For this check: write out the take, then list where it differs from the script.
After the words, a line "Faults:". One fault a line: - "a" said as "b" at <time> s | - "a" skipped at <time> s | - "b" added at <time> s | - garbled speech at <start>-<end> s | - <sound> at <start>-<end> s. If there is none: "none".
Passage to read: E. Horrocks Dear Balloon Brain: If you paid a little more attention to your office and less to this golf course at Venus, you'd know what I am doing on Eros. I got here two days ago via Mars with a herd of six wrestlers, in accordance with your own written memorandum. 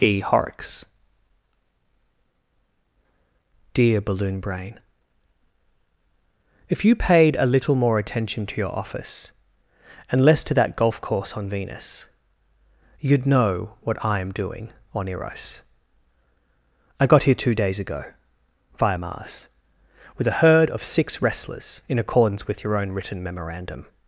E. Horrocks Dear Balloon Brain: If you paid a little more attention to your office and less to that golf course on Venus, you'd know what I am doing on Eros. I got here two days ago via Mars with a herd of six wrestlers, in accordance with your own written memorandum.
Faults:
- "this" said as "that" at 10.6 s
- "at" said as "on" at 11.3 s